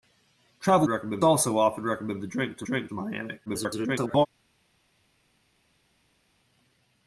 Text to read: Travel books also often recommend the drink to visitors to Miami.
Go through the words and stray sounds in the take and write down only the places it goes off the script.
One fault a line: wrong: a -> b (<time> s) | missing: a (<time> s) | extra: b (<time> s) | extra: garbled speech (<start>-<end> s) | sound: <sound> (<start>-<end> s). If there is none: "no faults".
wrong: books -> recommend (0.9 s)
wrong: visitors -> drink (2.6 s)
extra: garbled speech (3.5-4.3 s)